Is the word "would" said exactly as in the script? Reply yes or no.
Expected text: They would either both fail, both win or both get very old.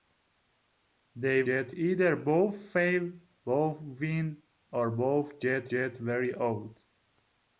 no